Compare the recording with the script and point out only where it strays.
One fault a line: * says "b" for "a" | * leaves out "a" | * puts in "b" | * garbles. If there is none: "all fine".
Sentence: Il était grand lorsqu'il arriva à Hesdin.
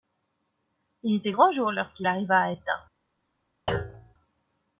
* puts in "jour"